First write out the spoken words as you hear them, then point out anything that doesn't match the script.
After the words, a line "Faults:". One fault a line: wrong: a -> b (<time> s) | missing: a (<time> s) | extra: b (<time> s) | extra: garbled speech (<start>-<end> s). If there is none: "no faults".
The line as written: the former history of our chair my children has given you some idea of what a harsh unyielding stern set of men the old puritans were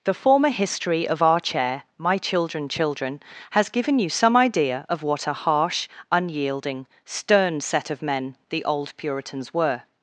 the former history of our chair my children children has given you some idea of what a harsh unyielding stern set of men the old puritans were
Faults:
extra: children (2.7 s)